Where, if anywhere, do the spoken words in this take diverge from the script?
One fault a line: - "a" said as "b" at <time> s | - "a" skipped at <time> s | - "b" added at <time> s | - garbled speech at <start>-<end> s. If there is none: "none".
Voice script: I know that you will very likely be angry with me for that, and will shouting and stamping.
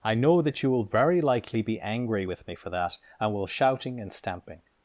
none